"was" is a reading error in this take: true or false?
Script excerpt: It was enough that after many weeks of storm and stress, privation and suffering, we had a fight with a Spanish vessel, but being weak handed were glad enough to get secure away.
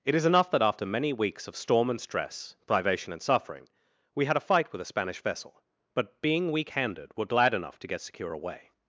true